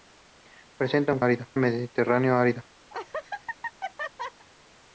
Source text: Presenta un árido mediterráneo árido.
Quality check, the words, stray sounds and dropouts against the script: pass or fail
fail